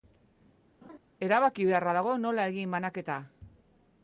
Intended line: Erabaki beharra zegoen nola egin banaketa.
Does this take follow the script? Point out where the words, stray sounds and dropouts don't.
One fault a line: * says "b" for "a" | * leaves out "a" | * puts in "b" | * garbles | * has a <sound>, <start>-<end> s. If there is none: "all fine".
* has a laugh, 0.8-1.0 s
* says "dago" for "zegoen"